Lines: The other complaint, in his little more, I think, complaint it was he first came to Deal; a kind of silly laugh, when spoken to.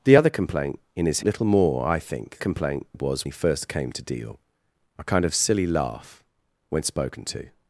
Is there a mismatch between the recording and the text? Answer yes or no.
no